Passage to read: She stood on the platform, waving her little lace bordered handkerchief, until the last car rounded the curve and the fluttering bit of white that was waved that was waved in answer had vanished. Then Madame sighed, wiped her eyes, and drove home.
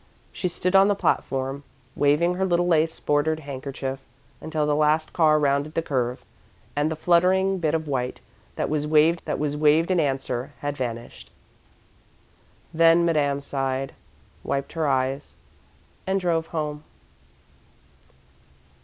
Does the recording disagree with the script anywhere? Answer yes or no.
no